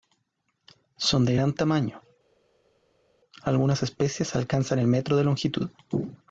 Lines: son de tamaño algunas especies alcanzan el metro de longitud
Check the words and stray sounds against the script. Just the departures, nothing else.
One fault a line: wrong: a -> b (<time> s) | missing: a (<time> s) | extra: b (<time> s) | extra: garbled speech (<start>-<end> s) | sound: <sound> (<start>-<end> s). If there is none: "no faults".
extra: gran (1.3 s)